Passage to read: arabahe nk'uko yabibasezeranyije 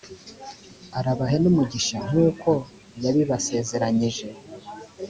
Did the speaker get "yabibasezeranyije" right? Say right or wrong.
right